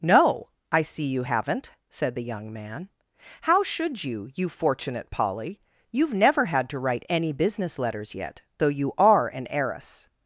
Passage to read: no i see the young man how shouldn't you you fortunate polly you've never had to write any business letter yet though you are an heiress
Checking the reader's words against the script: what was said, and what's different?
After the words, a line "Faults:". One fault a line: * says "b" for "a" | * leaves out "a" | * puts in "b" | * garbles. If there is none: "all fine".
no i see you haven't said the young man how should you you fortunate polly you've never had to write any business letters yet though you are an heiress
Faults:
* puts in "you haven't said"
* says "should" for "shouldn't"
* says "letters" for "letter"